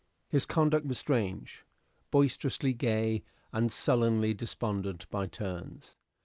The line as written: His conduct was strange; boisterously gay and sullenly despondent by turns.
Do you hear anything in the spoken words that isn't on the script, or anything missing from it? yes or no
no